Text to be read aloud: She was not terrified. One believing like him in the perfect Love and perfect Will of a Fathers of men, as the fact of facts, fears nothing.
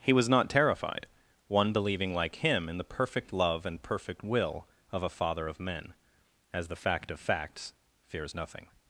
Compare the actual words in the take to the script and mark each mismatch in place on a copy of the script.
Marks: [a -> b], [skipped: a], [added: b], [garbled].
[She -> He] was not terrified. One believing like him in the perfect Love and perfect Will of a [Fathers -> Father] of men, as the fact of facts, fears nothing.